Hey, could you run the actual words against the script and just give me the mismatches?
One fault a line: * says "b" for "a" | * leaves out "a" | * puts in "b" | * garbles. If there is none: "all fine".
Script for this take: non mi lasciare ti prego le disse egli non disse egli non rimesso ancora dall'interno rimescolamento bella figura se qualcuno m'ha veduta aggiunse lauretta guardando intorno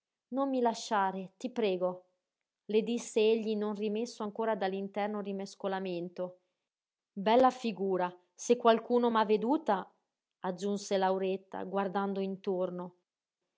* leaves out "disse egli non"